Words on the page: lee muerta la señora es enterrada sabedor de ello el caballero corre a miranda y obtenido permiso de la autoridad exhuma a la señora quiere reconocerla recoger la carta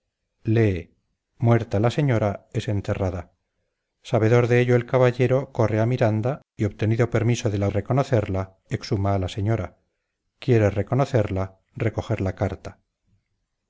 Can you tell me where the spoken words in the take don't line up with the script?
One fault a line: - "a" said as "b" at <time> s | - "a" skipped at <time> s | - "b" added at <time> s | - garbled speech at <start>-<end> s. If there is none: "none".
- "autoridad" said as "reconocerla" at 7.7 s